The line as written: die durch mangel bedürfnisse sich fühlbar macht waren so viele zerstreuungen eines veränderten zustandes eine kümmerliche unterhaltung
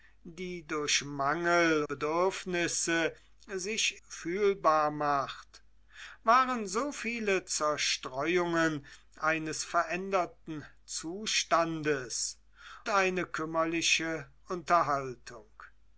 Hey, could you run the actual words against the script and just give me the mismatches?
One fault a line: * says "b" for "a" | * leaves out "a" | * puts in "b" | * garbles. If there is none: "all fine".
all fine